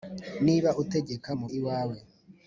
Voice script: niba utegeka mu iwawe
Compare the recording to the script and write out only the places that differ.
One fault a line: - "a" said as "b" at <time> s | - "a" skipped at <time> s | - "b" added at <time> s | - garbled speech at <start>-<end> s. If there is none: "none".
none